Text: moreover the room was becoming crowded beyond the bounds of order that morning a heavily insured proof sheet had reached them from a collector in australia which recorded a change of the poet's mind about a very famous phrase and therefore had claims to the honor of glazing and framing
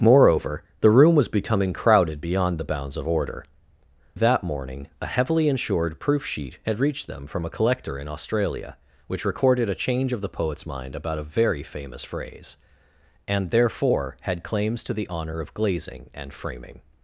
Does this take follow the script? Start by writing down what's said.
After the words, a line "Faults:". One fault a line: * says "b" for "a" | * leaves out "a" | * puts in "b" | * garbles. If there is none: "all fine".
moreover the room was becoming crowded beyond the bounds of order that morning a heavily insured proof sheet had reached them from a collector in australia which recorded a change of the poet's mind about a very famous phrase and therefore had claims to the honor of glazing and framing
Faults:
all fine